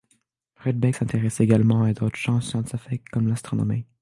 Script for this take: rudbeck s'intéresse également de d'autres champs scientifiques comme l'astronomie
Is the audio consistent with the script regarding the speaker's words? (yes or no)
no